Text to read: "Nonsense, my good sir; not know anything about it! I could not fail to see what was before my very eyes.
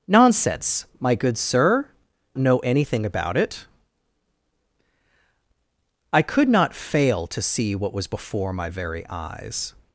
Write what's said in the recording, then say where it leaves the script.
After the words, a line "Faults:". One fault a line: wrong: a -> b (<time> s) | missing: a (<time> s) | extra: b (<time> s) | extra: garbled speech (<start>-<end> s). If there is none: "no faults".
"Nonsense, my good sir; know anything about it! I could not fail to see what was before my very eyes.
Faults:
missing: not (1.9 s)